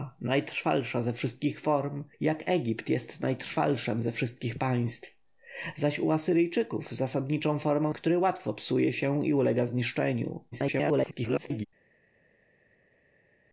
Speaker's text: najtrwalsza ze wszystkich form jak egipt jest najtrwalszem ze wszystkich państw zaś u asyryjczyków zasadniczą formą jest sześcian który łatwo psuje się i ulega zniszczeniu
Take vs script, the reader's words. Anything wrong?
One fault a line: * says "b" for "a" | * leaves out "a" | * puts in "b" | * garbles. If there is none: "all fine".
* leaves out "jest sześcian"
* garbles